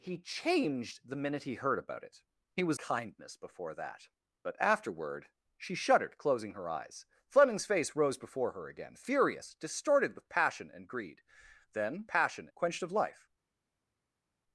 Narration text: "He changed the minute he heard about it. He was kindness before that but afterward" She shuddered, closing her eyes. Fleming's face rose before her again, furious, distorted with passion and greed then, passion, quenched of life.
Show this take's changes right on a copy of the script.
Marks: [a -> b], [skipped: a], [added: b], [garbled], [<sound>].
"He changed the minute he heard about it. He was kindness before that but afterward" She shuddered, closing her eyes. Fleming's face rose before her again, furious, distorted with passion and greed then, passion, quenched of life.